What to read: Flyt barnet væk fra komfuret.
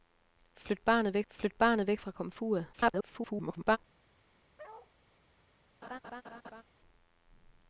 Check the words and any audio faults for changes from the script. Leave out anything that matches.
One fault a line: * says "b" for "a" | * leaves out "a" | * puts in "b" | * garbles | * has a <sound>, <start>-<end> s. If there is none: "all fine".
* puts in "flyt barnet væk"
* garbles
* has a bark, 4.6-4.9 s
* has a laugh, 5.8-6.6 s